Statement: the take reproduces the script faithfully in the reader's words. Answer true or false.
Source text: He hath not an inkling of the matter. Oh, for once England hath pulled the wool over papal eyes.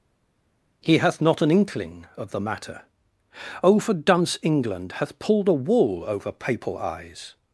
false